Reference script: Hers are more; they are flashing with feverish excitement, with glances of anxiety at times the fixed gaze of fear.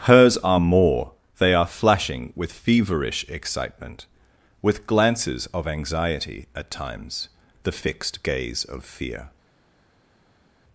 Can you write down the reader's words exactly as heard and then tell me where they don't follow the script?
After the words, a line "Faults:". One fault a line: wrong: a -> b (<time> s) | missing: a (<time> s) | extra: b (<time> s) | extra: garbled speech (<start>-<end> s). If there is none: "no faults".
Hers are more; they are flashing with feverish excitement, with glances of anxiety at times the fixed gaze of fear.
Faults:
no faults